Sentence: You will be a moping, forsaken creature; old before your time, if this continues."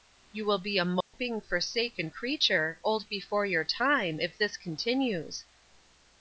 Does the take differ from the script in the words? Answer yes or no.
no